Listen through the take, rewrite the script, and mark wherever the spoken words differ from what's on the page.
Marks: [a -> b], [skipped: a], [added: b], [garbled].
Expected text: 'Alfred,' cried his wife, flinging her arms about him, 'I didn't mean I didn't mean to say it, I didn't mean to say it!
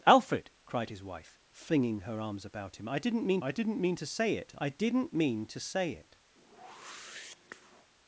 'Alfred,' cried his wife, flinging her arms about him, 'I didn't mean I didn't mean to say it, I didn't mean to say it!